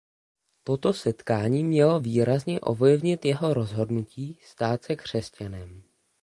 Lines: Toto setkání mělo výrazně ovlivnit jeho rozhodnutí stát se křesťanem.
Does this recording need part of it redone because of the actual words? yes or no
no